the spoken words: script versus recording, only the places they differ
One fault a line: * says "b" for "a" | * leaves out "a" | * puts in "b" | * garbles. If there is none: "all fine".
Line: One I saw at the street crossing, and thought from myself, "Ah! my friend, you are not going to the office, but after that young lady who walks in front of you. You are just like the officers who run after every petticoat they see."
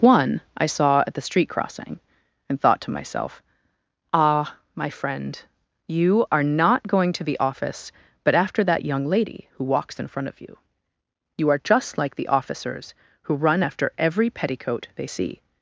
* says "to" for "from"